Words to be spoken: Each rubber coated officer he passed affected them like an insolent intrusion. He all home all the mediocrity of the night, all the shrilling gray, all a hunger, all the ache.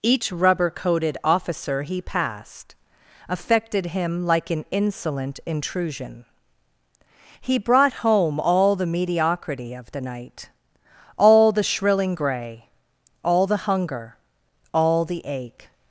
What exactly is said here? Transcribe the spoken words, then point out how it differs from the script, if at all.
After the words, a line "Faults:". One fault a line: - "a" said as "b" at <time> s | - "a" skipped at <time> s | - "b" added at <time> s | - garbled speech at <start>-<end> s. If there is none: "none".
Each rubber coated officer he passed affected him like an insolent intrusion. He brought home all the mediocrity of the night, all the shrilling gray, all the hunger, all the ache.
Faults:
- "them" said as "him" at 3.9 s
- "all" said as "brought" at 7.6 s
- "a" said as "the" at 13.5 s